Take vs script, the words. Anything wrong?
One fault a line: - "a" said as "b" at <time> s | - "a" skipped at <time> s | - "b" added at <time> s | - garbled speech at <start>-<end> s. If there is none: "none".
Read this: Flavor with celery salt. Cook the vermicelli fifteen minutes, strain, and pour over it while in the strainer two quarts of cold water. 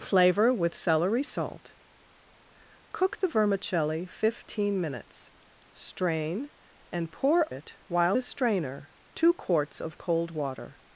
- "over" skipped at 7.5 s
- "in" skipped at 8.2 s